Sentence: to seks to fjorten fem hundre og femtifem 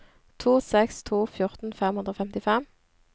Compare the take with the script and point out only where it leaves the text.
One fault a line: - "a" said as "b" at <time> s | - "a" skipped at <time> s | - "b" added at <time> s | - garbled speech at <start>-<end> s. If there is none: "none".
none